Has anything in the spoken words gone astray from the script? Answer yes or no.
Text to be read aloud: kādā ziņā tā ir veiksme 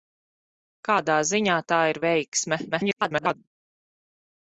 yes